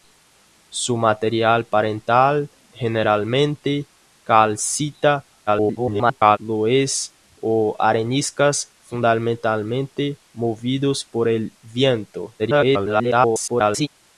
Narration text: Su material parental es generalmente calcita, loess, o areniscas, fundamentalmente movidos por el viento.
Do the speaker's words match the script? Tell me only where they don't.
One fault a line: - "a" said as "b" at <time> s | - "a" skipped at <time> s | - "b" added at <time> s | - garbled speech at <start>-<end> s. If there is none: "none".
- "es" skipped at 2.5 s
- garbled speech at 5.5-6.4 s
- garbled speech at 12.4-13.9 s